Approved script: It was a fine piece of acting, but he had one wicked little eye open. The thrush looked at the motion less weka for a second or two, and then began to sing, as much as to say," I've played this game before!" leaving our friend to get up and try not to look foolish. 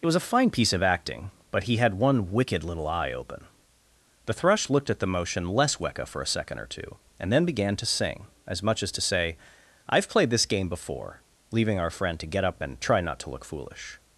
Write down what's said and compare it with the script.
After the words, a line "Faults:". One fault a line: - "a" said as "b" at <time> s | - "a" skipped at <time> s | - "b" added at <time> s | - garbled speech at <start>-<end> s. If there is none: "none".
It was a fine piece of acting, but he had one wicked little eye open. The thrush looked at the motion less weka for a second or two, and then began to sing, as much as to say," I've played this game before!" leaving our friend to get up and try not to look foolish.
Faults:
none